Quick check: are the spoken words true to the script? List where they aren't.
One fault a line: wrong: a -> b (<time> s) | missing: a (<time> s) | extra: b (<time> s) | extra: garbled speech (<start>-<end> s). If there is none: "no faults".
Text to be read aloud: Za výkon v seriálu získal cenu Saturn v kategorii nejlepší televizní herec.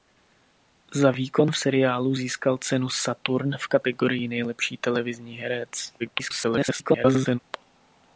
extra: garbled speech (6.0-7.4 s)